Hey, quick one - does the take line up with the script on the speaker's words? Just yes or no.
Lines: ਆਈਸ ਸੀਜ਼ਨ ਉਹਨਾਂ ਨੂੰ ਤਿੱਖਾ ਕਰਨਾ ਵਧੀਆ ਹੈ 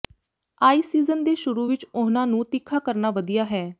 no